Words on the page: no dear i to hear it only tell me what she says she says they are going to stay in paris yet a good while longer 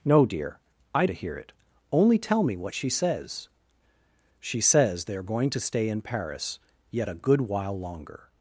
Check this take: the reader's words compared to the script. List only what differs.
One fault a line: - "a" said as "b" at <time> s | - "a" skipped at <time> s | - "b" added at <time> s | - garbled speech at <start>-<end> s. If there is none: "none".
none